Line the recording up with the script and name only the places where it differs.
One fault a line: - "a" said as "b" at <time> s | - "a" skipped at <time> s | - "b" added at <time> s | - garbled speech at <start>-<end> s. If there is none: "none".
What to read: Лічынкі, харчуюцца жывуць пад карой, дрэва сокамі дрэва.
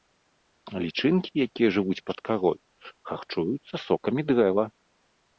- "харчуюцца" said as "якія" at 1.5 s
- "дрэва" said as "харчуюцца" at 3.1 s